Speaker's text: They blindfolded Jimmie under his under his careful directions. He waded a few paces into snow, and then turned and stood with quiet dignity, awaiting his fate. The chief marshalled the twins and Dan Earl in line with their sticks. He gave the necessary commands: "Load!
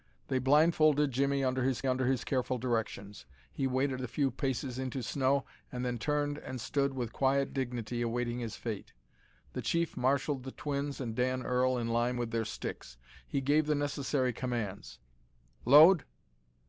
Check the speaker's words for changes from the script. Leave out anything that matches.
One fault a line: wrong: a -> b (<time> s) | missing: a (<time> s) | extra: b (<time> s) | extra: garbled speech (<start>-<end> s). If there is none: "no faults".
no faults